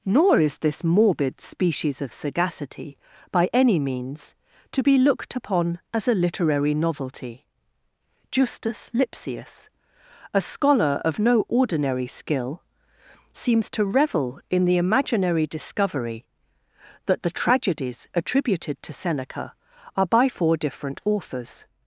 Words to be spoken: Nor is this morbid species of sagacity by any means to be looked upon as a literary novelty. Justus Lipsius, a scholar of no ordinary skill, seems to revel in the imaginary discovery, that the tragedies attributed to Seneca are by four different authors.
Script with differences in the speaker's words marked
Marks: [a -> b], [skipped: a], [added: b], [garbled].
Nor is this morbid species of sagacity by any means to be looked upon as a literary novelty. Justus Lipsius, a scholar of no ordinary skill, seems to revel in the imaginary discovery, that the tragedies attributed to Seneca are by four different authors.